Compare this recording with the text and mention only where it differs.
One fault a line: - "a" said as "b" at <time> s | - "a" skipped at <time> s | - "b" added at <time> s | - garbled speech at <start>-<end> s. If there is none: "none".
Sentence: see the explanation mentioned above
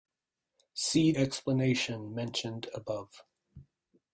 - "the" skipped at 1.1 s